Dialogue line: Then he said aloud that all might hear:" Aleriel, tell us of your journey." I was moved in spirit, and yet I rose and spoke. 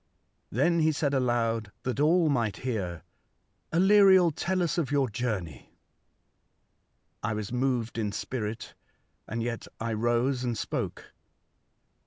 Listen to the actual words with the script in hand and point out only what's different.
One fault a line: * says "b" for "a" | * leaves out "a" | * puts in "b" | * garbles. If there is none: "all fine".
all fine